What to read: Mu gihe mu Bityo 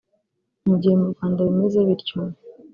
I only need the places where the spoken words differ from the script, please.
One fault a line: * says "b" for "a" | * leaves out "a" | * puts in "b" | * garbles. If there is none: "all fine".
* puts in "Rwanda bimeze"